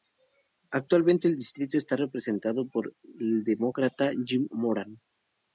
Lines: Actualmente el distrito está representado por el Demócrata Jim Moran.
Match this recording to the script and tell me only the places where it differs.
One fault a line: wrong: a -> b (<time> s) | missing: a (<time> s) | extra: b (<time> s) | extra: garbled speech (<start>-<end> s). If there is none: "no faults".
no faults